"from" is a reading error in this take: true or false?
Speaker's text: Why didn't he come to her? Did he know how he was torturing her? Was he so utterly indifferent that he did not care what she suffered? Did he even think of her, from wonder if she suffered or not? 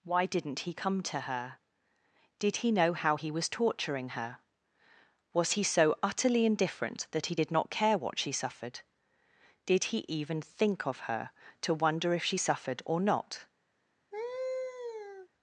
true